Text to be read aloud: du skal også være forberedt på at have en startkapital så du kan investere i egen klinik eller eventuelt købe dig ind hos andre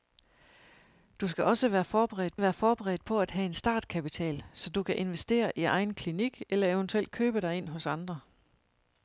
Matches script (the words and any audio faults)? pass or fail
fail